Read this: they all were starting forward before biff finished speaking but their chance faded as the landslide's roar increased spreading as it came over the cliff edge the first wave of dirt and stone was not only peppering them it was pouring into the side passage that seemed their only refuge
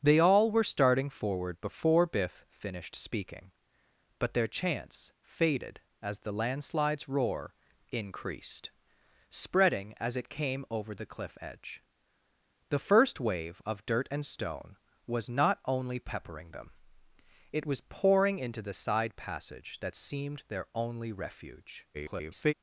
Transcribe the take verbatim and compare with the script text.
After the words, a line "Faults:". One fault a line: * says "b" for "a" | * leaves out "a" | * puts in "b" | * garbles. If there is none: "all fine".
they all were starting forward before biff finished speaking but their chance faded as the landslide's roar increased spreading as it came over the cliff edge the first wave of dirt and stone was not only peppering them it was pouring into the side passage that seemed their only refuge [garbled]
Faults:
* garbles